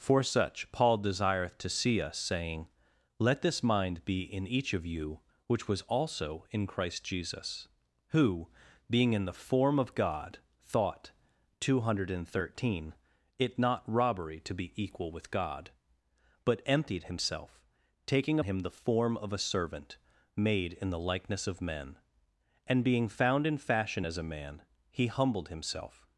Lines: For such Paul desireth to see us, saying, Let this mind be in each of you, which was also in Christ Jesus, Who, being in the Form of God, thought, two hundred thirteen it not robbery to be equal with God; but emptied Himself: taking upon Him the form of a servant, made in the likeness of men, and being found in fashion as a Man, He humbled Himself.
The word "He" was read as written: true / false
true